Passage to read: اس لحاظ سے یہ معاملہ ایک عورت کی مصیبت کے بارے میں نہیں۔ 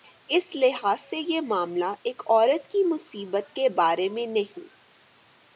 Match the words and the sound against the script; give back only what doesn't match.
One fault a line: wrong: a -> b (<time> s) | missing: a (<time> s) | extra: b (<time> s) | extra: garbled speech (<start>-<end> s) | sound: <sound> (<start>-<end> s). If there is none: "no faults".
no faults